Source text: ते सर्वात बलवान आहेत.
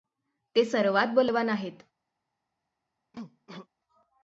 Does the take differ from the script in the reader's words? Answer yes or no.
no